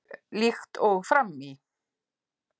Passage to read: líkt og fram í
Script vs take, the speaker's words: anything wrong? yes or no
no